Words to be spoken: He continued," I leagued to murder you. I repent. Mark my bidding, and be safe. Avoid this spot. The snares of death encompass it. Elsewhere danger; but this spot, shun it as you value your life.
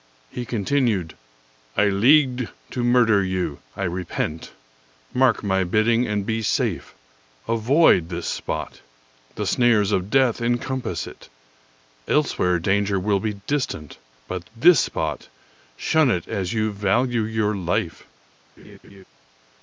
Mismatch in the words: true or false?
true